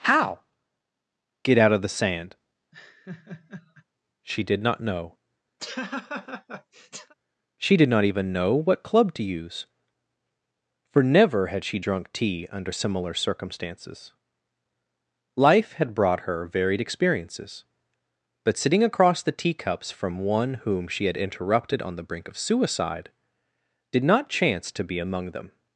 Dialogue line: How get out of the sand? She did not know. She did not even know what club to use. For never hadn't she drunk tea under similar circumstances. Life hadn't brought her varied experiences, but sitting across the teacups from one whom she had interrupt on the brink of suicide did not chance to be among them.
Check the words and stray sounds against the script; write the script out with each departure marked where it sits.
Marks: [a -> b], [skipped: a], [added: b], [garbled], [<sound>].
How get out of the sand? [laugh] She did not know. [laugh] She did not even know what club to use. For never [hadn't -> had] she drunk tea under similar circumstances. Life [hadn't -> had] brought her varied experiences, but sitting across the teacups from one whom she had [interrupt -> interrupted] on the brink of suicide did not chance to be among them.